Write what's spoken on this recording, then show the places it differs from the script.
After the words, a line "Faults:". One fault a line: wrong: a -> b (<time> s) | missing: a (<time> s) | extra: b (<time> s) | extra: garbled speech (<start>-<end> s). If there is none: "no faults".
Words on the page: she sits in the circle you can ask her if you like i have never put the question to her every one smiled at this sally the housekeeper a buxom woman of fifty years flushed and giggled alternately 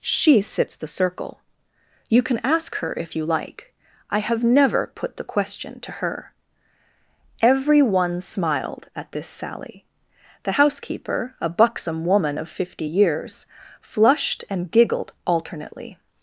she sits the circle you can ask her if you like i have never put the question to her every one smiled at this sally the housekeeper a buxom woman of fifty years flushed and giggled alternately
Faults:
missing: in (0.8 s)